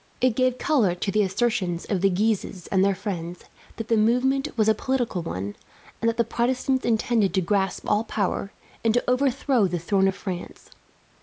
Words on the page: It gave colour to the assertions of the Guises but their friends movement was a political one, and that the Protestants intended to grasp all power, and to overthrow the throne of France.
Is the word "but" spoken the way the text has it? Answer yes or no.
no